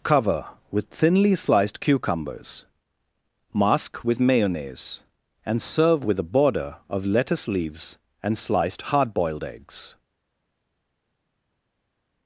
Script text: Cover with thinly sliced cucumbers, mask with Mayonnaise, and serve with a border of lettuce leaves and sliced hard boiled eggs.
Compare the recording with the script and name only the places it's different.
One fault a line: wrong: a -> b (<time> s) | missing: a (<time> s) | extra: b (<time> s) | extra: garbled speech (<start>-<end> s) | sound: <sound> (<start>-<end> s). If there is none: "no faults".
no faults